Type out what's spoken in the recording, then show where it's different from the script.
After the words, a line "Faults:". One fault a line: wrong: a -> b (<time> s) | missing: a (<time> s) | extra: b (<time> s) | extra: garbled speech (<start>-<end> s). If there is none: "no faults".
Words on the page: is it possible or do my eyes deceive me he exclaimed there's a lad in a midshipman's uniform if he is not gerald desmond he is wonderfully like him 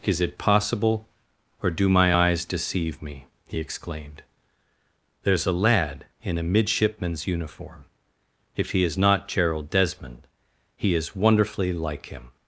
is it possible or do my eyes deceive me he exclaimed there's a lad in a midshipman's uniform if he is not gerald desmond he is wonderfully like him
Faults:
no faults